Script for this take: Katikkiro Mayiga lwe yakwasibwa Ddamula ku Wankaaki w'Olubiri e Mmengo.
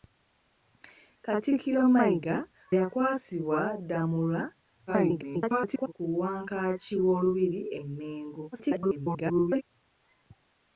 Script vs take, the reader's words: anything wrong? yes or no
yes